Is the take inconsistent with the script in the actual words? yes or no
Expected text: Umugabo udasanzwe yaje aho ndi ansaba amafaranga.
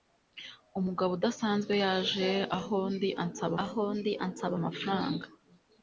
yes